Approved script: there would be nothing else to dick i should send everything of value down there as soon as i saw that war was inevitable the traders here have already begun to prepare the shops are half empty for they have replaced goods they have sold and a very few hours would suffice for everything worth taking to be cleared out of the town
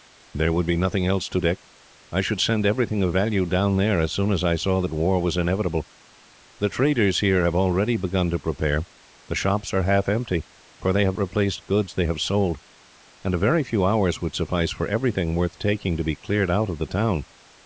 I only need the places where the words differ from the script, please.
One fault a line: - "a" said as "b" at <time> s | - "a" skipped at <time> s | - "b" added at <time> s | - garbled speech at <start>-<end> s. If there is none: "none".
none